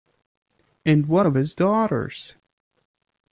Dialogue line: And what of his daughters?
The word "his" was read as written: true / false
true